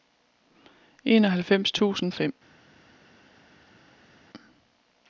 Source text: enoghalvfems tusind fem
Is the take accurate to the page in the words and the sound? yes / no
yes